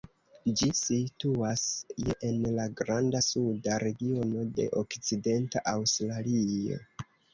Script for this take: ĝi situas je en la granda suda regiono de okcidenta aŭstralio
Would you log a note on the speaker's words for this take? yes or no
no